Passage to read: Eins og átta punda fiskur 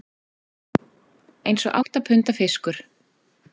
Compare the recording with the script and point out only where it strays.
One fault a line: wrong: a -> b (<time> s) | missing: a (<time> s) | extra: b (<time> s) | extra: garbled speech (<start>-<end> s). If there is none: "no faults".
no faults